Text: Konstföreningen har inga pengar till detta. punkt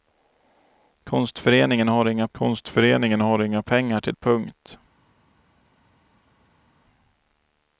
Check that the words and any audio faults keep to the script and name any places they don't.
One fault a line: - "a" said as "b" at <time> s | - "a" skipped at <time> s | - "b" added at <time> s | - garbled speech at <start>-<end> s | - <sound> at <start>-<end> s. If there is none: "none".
- "konstföreningen har inga" added at 2.3 s
- "detta" skipped at 4.1 s